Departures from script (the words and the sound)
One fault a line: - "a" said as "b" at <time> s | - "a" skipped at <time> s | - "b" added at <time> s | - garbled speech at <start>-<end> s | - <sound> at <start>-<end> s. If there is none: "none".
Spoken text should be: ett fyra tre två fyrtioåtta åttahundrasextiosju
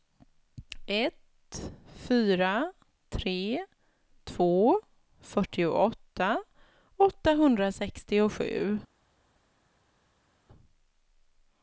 none